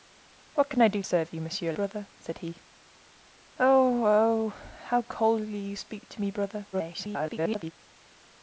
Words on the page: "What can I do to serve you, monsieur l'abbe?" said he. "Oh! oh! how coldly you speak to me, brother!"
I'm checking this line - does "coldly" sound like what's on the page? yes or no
yes